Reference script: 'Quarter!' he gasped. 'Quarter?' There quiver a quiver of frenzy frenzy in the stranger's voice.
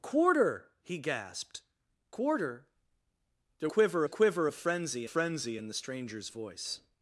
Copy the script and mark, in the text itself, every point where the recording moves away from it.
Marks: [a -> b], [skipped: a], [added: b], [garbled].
'Quarter!' he gasped. 'Quarter?' There quiver a quiver of frenzy frenzy in the stranger's voice.